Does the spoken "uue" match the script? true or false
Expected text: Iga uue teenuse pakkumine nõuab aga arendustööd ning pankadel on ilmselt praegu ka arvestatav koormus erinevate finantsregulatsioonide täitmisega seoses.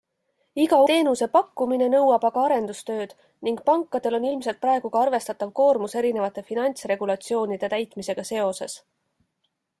false